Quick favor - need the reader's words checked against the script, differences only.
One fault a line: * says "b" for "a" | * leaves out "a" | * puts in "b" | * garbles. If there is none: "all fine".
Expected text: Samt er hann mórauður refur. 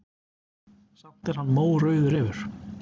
all fine